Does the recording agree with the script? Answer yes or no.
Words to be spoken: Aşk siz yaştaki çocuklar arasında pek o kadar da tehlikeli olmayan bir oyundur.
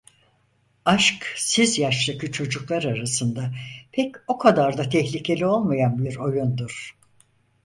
yes